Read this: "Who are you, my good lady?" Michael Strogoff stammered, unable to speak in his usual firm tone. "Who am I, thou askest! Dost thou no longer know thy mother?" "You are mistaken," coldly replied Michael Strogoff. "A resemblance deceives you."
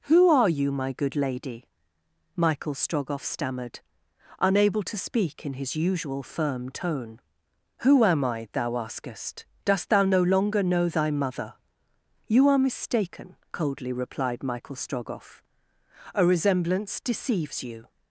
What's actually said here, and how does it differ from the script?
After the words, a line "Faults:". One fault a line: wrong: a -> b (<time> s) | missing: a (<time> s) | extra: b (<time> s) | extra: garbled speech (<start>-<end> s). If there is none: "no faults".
"Who are you, my good lady?" Michael Strogoff stammered, unable to speak in his usual firm tone. "Who am I, thou askest! Dost thou no longer know thy mother?" "You are mistaken," coldly replied Michael Strogoff. "A resemblance deceives you."
Faults:
no faults